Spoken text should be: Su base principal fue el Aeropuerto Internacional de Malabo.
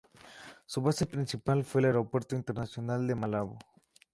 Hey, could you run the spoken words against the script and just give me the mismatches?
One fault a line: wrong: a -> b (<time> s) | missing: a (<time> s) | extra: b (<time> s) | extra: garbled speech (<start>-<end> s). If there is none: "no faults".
no faults